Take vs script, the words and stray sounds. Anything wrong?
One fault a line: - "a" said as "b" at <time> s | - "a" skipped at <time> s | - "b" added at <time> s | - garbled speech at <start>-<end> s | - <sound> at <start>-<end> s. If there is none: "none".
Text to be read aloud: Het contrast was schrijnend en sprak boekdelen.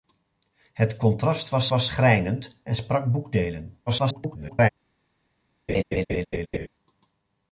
- "was" added at 1.7 s
- garbled speech at 3.9-4.7 s
- laugh at 5.7-6.7 s